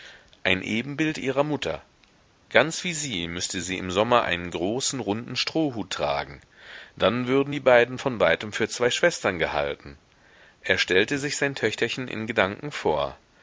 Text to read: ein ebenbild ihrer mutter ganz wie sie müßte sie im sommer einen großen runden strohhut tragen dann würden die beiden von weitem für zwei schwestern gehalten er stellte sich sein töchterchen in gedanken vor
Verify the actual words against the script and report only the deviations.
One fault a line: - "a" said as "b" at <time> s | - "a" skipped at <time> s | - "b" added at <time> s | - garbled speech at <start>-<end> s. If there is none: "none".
none